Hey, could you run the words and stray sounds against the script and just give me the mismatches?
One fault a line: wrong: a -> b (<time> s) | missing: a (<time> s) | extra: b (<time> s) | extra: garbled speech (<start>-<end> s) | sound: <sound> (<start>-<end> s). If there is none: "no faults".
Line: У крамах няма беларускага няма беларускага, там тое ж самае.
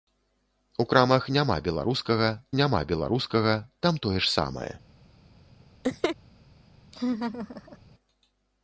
sound: laugh (5.8-6.2 s)
sound: laugh (6.9-7.8 s)